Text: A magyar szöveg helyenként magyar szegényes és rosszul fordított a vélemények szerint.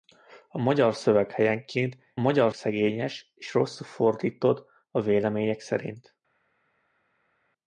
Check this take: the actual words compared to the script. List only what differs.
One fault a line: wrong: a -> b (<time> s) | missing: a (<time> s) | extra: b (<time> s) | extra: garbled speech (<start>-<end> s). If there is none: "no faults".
no faults